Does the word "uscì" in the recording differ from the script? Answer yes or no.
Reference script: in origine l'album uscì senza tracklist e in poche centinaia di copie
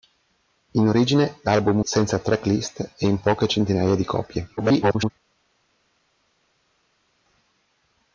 yes